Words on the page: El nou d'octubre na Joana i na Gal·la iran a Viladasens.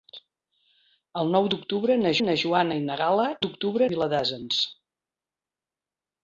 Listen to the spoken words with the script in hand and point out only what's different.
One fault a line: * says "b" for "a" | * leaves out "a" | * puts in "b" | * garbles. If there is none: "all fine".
* puts in "na"
* says "d'octubre" for "iran"